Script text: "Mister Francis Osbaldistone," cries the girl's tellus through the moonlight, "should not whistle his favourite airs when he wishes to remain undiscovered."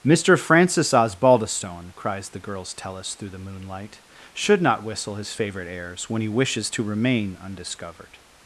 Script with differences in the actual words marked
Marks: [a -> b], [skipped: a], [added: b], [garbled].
"Mister Francis Osbaldistone," cries the girl's tellus through the moonlight, "should not whistle his favourite airs when he wishes to remain undiscovered."